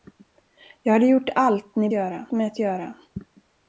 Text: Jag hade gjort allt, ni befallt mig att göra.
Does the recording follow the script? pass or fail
fail